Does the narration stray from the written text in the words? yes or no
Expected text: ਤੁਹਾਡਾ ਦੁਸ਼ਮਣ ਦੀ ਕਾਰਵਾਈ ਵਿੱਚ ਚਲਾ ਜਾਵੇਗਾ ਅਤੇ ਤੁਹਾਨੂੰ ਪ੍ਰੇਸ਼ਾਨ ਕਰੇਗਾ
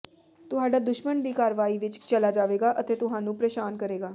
no